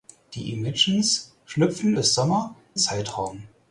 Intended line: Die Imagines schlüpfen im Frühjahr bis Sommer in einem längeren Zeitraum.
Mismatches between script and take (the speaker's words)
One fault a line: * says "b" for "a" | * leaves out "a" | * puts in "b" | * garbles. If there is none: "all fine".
* leaves out "im Frühjahr"
* leaves out "in einem längeren"